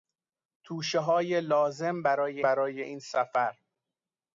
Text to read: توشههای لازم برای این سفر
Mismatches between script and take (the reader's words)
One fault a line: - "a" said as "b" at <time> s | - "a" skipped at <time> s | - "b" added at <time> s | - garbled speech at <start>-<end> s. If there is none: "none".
- "برای" added at 2.4 s